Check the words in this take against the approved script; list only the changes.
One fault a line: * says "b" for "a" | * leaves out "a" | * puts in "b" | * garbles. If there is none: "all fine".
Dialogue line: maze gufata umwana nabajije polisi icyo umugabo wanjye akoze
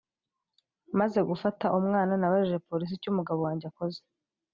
all fine